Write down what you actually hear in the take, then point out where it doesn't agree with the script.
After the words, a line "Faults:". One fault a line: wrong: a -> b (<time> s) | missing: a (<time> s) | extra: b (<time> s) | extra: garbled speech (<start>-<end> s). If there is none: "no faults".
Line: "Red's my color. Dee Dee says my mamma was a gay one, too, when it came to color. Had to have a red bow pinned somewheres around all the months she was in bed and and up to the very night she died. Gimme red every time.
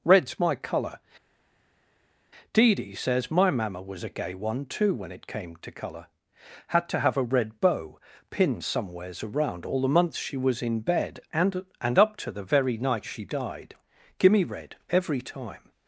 "Red's my color. Dee Dee says my mamma was a gay one, too, when it came to color. Had to have a red bow pinned somewheres around all the months she was in bed and and up to the very night she died. Gimme red every time.
Faults:
no faults